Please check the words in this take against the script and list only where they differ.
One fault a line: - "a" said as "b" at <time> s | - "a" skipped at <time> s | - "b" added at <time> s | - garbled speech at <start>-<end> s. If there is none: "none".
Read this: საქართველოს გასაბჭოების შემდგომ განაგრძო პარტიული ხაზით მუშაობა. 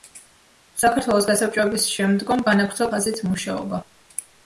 - "პარტიული" skipped at 2.9 s